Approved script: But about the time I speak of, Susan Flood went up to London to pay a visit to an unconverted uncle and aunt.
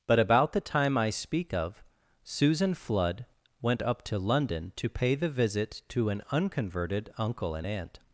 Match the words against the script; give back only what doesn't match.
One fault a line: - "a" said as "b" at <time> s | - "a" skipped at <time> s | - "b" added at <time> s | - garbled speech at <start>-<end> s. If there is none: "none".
- "a" said as "the" at 5.2 s